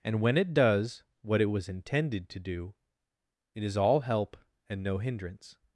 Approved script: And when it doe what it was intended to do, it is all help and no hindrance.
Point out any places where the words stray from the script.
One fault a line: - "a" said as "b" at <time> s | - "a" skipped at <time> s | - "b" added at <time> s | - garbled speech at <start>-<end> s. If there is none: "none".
- "doe" said as "does" at 0.5 s